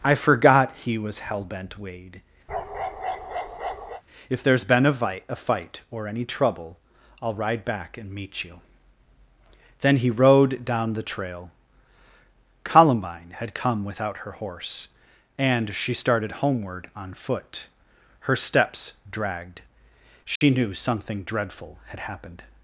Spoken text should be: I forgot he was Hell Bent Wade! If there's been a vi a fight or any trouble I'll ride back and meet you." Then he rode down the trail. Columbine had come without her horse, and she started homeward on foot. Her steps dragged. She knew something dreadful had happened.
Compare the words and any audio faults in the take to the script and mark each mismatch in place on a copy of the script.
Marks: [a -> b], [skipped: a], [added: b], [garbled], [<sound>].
I forgot he was Hell Bent Wade! [bark] If there's been a vi a fight or any trouble I'll ride back and meet you." Then he rode down the trail. Columbine had come without her horse, and she started homeward on foot. Her steps dragged. She [dropout] knew something dreadful had happened.